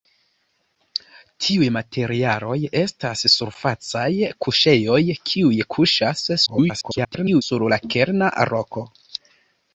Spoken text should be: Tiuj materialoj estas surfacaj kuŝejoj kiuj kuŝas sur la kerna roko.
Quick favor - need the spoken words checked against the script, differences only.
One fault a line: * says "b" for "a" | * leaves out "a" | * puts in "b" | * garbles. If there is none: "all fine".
* garbles